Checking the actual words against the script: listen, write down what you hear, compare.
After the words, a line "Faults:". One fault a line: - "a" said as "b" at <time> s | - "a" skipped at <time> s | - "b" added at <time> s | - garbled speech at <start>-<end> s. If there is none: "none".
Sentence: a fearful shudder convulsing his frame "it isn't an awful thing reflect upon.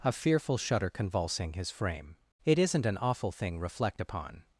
a fearful shudder convulsing his frame "it isn't an awful thing reflect upon.
Faults:
none